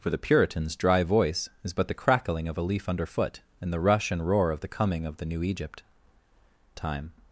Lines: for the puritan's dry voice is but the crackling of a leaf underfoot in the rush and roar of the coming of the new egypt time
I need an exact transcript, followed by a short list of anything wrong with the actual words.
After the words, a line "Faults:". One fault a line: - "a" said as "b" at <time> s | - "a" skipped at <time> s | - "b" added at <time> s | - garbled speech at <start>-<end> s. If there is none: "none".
for the puritan's dry voice is but the crackling of a leaf underfoot in the rush and roar of the coming of the new egypt time
Faults:
none